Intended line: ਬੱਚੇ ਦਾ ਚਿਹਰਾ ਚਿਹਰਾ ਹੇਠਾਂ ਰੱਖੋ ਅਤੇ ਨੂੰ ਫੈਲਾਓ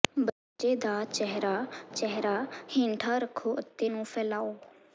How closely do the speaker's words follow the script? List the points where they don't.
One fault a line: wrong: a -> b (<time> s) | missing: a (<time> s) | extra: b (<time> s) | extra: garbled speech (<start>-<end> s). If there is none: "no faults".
no faults